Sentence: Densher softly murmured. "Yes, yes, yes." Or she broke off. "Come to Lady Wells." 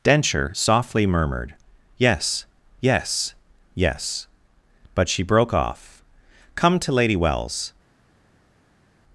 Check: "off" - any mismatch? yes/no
no